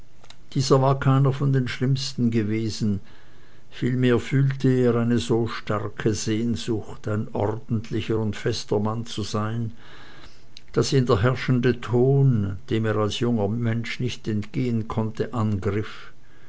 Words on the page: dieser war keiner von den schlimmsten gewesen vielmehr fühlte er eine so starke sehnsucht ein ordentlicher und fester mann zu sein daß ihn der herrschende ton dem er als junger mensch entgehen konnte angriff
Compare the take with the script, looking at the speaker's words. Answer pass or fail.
fail